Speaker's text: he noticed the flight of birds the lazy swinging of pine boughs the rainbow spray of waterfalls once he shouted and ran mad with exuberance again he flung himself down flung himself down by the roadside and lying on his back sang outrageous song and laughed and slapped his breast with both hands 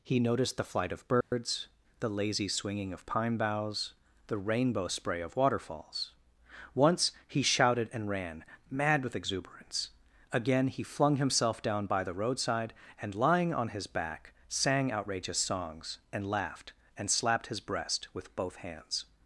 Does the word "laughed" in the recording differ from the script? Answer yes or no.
no